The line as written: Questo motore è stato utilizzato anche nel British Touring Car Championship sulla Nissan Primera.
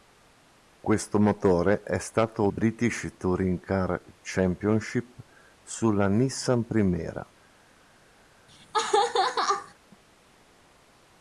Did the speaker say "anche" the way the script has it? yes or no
no